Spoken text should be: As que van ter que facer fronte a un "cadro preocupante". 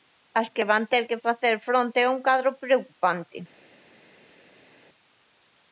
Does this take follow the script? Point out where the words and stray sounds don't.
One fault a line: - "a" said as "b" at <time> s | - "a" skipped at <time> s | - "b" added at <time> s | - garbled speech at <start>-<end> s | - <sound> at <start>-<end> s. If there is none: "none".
none